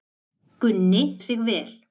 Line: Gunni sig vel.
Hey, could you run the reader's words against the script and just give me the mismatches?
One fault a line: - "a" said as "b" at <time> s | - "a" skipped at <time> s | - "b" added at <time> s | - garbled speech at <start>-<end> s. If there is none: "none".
none